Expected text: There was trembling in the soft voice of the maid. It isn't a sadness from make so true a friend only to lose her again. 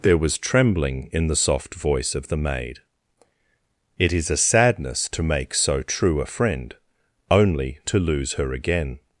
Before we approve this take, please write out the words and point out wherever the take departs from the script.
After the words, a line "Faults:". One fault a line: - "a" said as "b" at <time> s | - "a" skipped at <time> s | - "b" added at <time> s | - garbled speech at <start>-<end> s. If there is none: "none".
There was trembling in the soft voice of the maid. It is a sadness to make so true a friend only to lose her again.
Faults:
- "isn't" said as "is" at 4.1 s
- "from" said as "to" at 5.1 s